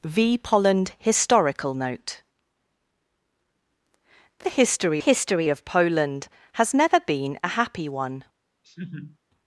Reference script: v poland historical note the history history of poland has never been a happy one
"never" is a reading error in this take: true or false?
false